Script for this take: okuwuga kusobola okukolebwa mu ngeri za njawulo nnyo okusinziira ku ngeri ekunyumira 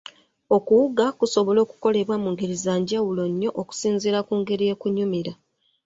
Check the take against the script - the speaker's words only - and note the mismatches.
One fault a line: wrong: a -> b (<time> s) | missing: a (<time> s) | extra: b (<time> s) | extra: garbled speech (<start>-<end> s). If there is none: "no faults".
no faults